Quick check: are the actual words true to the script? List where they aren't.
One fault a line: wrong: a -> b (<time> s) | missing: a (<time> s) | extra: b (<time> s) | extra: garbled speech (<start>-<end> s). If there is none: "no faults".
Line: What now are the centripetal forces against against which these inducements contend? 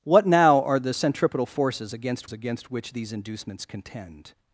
no faults